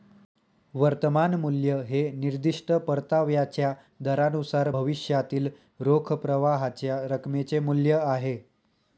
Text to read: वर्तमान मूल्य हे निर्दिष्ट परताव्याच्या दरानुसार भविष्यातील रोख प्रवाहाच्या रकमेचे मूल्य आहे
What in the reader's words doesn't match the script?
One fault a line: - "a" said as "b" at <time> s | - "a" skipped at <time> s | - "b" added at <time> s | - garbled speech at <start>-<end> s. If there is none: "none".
none